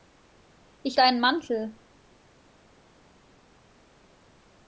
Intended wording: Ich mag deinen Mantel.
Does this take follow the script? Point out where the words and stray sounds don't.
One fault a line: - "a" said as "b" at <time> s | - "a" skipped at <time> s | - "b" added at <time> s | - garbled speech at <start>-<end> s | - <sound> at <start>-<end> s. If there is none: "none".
- "mag" skipped at 1.0 s